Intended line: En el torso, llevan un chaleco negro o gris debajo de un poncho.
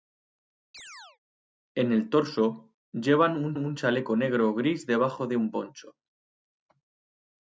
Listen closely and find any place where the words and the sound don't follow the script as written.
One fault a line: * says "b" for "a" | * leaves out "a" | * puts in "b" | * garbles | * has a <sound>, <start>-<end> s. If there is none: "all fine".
* has a chirp, 0.7-1.2 s
* puts in "un"